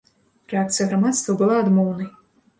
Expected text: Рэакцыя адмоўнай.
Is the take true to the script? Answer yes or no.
no